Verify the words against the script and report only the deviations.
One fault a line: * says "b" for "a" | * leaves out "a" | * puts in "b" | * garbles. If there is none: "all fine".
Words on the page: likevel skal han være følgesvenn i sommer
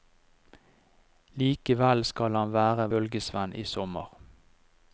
all fine